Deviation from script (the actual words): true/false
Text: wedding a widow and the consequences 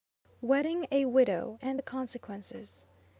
false